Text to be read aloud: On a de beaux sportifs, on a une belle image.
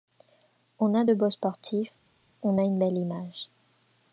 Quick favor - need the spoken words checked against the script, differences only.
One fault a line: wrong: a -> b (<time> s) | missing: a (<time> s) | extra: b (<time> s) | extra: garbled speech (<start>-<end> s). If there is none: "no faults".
no faults